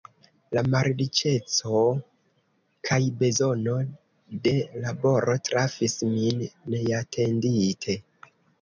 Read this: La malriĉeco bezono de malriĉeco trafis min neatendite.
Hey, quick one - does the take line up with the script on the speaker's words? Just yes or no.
no